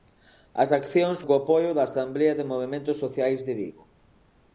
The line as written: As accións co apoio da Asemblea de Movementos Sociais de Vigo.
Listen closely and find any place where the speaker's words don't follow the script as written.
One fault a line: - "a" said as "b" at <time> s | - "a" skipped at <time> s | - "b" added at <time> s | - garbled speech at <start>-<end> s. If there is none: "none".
none